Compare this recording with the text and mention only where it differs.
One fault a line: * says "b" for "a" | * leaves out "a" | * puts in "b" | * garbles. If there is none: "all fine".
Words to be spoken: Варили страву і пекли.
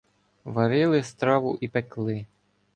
all fine